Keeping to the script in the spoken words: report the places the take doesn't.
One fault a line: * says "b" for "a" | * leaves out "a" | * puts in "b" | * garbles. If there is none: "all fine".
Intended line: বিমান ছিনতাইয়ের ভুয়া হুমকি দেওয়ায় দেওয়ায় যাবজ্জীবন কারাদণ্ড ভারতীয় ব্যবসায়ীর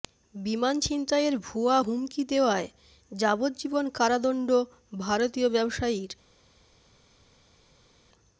* leaves out "দেওয়ায়"